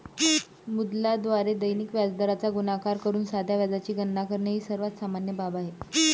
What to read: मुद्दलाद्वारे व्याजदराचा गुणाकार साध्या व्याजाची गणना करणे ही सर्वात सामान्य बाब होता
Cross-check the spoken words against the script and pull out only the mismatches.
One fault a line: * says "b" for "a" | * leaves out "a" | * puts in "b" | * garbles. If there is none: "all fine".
* puts in "दैनिक"
* puts in "करून"
* says "आहे" for "होता"